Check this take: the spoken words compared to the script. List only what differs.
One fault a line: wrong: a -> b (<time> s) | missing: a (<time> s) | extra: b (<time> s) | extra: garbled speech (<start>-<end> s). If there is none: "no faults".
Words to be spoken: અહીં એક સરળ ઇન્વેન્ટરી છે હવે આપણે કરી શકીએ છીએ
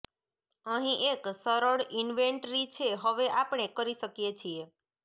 no faults